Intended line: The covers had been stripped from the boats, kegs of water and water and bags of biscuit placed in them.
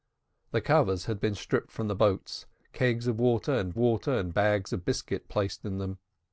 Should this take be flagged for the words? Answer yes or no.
no